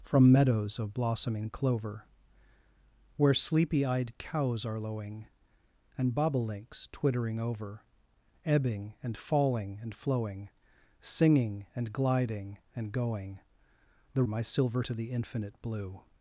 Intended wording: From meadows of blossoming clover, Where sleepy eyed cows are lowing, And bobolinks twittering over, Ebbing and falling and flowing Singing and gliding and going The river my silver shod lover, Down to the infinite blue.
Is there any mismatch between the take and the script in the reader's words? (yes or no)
yes